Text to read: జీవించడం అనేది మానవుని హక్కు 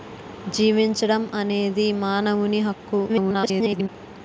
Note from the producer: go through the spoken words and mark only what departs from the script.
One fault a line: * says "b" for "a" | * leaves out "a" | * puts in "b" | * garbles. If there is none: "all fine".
* garbles